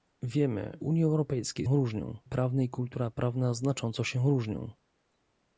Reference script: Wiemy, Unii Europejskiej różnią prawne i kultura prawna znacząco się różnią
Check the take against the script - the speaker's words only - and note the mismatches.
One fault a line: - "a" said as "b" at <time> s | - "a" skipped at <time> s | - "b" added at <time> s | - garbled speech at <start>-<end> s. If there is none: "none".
none